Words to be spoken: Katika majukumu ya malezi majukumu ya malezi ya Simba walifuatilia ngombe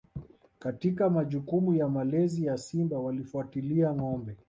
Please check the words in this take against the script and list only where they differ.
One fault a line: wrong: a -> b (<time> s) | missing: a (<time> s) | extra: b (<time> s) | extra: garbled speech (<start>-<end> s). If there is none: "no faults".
missing: majukumu ya malezi (2.5 s)